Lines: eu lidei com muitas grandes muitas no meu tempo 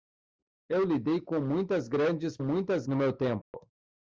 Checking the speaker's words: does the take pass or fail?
pass